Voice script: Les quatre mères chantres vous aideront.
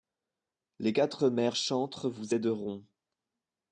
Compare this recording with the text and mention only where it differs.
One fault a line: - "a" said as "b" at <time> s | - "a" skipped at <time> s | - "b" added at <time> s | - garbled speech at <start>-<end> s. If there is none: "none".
none